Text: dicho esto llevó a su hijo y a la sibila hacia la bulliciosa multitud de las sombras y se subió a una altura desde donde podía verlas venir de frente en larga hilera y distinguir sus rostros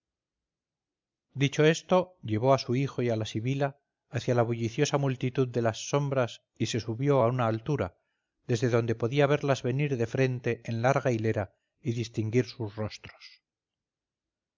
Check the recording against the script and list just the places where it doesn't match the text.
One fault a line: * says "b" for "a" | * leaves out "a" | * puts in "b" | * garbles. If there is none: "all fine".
all fine